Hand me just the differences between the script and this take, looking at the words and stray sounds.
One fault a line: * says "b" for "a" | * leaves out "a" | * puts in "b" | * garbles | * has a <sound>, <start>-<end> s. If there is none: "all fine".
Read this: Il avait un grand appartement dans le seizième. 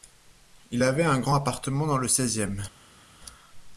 all fine